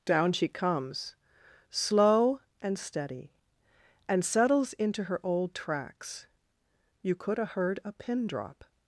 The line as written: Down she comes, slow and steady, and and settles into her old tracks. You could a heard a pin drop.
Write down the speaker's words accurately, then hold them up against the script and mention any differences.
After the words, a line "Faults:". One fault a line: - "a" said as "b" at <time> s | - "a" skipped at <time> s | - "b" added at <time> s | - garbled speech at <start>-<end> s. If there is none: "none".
Down she comes, slow and steady, and settles into her old tracks. You could a heard a pin drop.
Faults:
- "and" skipped at 4.2 s